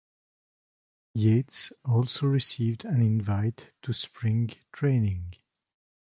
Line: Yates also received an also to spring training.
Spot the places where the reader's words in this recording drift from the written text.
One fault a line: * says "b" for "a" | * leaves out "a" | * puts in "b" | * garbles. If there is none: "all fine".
* says "invite" for "also"